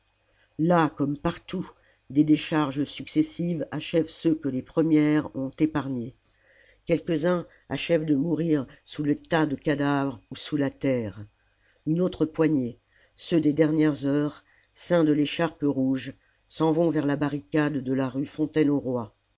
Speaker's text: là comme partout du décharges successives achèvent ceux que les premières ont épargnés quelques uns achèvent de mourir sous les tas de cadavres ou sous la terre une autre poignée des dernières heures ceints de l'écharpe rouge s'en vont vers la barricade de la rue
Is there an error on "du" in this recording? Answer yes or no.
yes